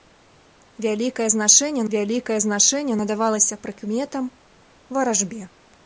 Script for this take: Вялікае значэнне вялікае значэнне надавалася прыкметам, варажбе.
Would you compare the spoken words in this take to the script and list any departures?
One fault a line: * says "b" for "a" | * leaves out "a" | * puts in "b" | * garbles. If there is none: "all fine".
all fine